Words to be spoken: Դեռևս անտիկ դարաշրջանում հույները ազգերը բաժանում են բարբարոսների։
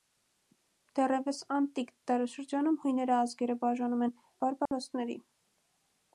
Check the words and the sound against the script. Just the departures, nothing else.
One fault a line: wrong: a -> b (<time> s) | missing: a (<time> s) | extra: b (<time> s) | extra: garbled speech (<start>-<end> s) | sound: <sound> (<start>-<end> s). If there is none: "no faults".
sound: dropout (4.7-4.7 s)